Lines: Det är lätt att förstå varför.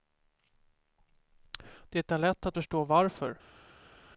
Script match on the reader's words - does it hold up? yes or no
yes